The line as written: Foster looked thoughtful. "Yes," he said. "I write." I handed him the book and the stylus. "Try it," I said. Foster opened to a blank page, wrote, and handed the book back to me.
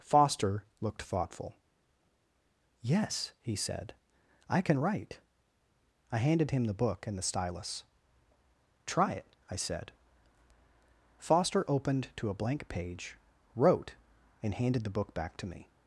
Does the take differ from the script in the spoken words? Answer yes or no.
yes